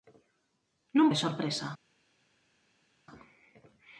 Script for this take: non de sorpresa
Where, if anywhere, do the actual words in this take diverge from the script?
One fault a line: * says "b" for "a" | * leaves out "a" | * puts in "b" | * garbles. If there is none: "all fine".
all fine